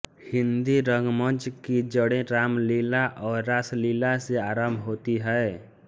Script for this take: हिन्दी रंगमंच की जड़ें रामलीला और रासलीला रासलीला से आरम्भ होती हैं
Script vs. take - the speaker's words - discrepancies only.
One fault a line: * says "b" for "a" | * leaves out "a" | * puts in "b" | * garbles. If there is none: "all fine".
* leaves out "रासलीला"